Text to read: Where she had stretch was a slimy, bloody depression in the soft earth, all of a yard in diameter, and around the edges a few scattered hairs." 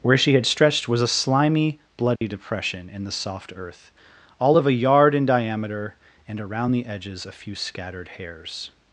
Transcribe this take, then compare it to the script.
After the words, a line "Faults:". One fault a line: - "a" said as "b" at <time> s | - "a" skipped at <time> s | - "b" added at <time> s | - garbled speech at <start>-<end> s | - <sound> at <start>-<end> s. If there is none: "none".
Where she had stretched was a slimy, bloody depression in the soft earth, all of a yard in diameter, and around the edges a few scattered hairs."
Faults:
- "stretch" said as "stretched" at 0.5 s
- dropout at 2.2-2.2 s